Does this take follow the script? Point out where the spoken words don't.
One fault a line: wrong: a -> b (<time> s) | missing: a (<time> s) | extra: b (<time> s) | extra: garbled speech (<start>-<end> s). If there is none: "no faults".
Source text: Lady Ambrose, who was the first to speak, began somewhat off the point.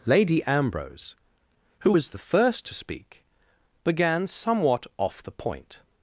no faults